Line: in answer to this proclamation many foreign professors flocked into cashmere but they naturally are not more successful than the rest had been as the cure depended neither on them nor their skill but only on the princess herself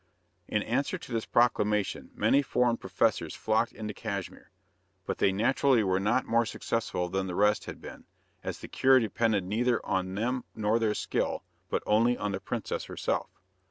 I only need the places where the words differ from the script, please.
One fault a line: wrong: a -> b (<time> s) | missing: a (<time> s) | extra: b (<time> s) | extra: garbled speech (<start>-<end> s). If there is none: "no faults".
wrong: are -> were (5.8 s)